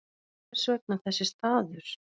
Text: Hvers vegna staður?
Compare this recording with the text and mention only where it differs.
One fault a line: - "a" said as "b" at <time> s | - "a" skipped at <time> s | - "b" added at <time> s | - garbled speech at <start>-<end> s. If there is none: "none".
- "þessi" added at 1.0 s